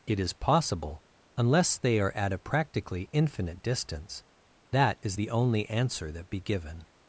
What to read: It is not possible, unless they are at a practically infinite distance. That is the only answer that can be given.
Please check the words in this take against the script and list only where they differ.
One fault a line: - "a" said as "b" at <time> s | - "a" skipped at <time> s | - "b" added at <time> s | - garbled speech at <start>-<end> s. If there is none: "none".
- "not" skipped at 0.3 s
- "can" skipped at 6.3 s